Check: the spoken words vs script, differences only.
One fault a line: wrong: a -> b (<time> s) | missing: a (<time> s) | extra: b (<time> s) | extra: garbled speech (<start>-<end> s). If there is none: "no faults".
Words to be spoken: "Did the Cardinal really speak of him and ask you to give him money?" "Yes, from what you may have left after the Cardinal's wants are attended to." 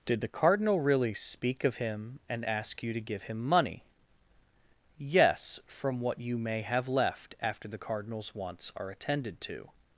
no faults